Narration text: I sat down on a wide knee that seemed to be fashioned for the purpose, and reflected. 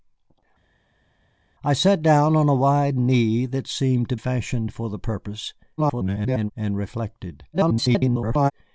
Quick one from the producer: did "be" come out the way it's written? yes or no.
no